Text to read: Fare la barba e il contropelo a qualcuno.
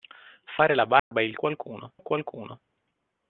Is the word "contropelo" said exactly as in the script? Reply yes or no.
no